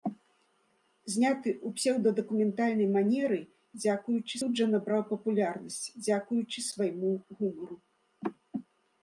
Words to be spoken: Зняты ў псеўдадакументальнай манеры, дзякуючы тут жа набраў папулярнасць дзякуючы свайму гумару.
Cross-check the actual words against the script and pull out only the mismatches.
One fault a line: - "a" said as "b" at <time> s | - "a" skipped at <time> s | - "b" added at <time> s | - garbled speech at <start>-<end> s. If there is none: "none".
none